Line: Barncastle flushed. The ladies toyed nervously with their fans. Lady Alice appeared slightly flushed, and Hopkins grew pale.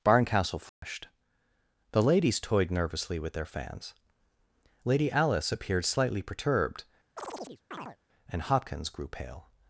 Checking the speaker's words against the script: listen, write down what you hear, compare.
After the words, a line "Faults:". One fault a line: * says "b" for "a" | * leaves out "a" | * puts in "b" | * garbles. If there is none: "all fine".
Barncastle flushed. The ladies toyed nervously with their fans. Lady Alice appeared slightly perturbed, and Hopkins grew pale.
Faults:
* says "perturbed" for "flushed"